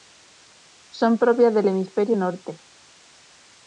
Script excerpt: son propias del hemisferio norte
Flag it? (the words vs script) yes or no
no